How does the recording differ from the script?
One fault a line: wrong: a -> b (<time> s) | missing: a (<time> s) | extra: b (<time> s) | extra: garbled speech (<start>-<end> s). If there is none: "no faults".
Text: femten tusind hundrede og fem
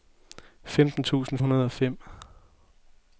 no faults